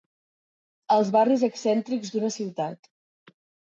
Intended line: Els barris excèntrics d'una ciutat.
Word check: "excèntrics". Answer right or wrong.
right